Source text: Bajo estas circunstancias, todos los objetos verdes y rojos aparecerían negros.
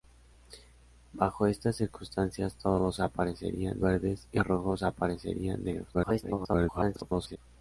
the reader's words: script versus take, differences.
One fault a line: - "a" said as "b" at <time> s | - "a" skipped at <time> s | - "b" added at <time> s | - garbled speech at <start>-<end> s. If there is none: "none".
- "objetos" said as "aparecerían" at 3.0 s
- garbled speech at 5.9-7.4 s